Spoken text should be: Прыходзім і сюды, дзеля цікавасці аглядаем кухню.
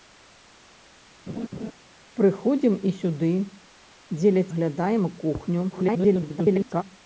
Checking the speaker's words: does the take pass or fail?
fail